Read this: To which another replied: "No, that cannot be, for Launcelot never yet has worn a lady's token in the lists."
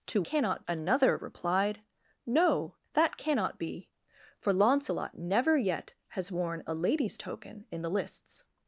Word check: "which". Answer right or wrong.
wrong